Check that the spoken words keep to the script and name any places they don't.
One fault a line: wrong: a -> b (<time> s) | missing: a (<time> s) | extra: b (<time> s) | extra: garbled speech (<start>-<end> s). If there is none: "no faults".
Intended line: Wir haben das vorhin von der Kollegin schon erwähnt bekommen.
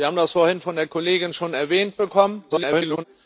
extra: garbled speech (2.5-3.0 s)